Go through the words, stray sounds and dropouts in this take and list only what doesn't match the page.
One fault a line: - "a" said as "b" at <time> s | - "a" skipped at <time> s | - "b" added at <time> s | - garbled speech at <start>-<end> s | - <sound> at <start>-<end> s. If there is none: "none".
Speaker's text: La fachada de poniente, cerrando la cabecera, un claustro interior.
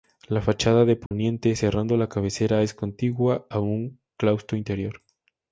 - dropout at 1.1-1.1 s
- "es contigua a" added at 2.6 s